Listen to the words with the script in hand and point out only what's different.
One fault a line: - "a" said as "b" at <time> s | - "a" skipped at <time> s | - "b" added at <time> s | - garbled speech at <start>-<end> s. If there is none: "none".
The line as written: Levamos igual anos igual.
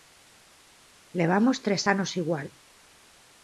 - "igual" said as "tres" at 1.6 s